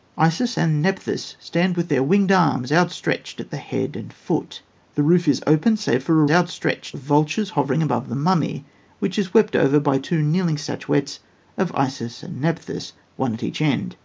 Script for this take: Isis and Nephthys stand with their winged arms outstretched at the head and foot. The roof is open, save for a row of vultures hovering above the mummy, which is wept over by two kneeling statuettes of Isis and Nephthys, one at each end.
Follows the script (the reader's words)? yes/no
no